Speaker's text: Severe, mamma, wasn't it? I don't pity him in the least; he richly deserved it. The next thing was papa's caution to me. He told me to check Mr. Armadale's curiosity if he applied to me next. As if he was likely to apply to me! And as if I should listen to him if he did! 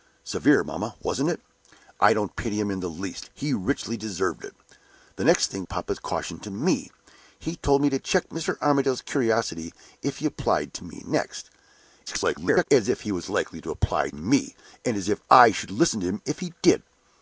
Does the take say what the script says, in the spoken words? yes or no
no